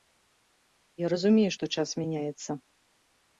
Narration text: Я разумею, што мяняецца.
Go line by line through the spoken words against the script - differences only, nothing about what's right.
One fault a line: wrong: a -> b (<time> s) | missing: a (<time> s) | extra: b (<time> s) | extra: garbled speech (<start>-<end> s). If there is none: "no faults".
extra: час (1.8 s)